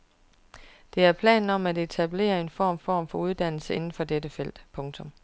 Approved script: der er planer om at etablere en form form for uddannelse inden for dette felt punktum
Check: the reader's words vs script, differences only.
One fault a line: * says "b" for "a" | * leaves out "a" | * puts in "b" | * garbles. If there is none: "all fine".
all fine